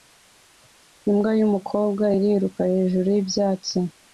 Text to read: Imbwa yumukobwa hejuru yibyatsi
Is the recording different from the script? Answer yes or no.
yes